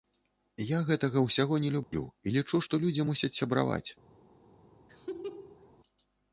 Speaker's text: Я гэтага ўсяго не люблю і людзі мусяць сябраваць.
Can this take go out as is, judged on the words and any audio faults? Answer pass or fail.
fail